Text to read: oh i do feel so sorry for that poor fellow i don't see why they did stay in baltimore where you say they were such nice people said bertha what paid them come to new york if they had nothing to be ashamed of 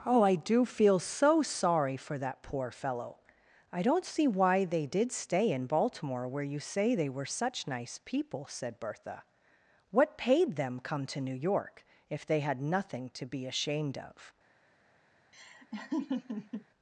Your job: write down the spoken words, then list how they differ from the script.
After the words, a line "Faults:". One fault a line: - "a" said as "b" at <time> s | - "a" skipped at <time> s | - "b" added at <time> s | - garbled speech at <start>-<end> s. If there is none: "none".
oh i do feel so sorry for that poor fellow i don't see why they did stay in baltimore where you say they were such nice people said bertha what paid them come to new york if they had nothing to be ashamed of
Faults:
none